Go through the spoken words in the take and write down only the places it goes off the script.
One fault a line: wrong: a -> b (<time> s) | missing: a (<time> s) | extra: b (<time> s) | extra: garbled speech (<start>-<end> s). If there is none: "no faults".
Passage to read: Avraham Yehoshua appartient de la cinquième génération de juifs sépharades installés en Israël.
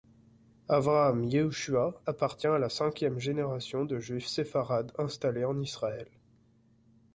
wrong: de -> à (2.5 s)